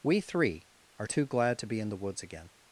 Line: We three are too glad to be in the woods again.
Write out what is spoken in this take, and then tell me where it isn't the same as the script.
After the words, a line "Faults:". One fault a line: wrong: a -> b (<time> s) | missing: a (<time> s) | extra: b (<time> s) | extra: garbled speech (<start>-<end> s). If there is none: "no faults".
We three are too glad to be in the woods again.
Faults:
no faults